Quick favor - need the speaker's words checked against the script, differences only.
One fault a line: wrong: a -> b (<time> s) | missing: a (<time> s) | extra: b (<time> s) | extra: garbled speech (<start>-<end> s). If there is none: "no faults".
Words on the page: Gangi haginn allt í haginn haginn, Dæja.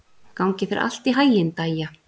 wrong: haginn -> þér (0.7 s)
missing: haginn (1.5 s)